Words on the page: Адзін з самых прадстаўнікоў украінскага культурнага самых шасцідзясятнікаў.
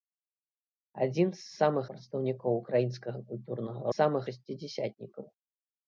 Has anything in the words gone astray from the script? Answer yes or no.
no